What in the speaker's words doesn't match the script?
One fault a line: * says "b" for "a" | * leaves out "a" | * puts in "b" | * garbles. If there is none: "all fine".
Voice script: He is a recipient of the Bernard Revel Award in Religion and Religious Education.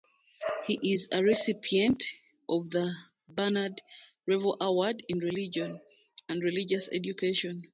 all fine